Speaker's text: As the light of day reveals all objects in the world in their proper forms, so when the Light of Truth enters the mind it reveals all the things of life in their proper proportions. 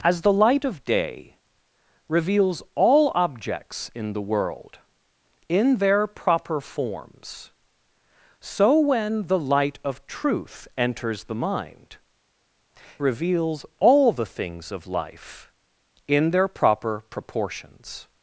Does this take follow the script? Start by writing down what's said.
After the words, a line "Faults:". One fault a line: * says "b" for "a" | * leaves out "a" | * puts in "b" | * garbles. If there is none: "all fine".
As the light of day reveals all objects in the world in their proper forms, so when the Light of Truth enters the mind reveals all the things of life in their proper proportions.
Faults:
* leaves out "it"